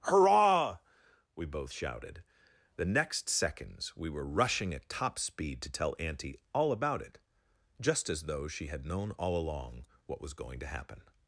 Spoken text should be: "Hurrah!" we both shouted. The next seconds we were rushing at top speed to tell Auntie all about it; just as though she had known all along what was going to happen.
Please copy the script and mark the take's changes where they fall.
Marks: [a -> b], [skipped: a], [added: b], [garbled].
"Hurrah!" we both shouted. The next seconds we were rushing at top speed to tell Auntie all about it; just as though she had known all along what was going to happen.